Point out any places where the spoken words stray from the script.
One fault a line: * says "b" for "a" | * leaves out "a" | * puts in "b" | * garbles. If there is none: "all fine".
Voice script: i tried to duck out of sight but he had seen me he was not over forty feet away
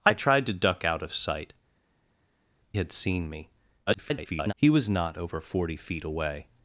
* leaves out "but he"
* garbles